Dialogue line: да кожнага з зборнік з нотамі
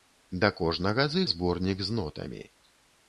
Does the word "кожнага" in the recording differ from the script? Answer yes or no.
no